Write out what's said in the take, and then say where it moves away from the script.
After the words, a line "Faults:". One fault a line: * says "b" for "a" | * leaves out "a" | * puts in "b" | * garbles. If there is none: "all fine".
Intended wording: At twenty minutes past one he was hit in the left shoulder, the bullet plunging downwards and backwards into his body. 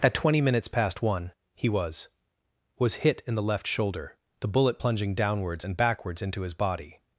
At twenty minutes past one he was was hit in the left shoulder, the bullet plunging downwards and backwards into his body.
Faults:
* puts in "was"